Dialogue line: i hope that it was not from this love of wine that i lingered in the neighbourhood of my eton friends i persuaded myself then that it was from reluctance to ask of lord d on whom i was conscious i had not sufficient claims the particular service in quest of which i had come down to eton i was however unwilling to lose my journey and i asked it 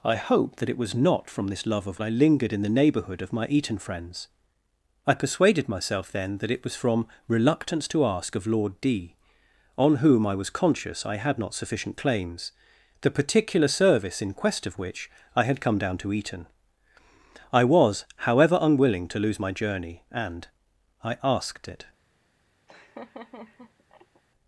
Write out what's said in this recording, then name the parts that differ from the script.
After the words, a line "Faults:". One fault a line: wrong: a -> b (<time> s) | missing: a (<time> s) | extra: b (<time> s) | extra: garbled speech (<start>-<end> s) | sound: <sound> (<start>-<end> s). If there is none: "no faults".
i hope that it was not from this love of i lingered in the neighbourhood of my eton friends i persuaded myself then that it was from reluctance to ask of lord d on whom i was conscious i had not sufficient claims the particular service in quest of which i had come down to eton i was however unwilling to lose my journey and i asked it
Faults:
missing: wine that (2.0 s)
sound: laugh (22.7-24.2 s)